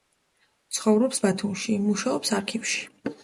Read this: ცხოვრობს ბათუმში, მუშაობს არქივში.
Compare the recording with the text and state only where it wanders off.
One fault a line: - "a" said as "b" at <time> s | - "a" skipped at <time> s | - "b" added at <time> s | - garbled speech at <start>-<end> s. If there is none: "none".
none